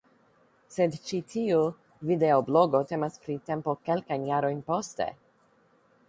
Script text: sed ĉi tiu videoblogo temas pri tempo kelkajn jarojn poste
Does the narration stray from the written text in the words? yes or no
no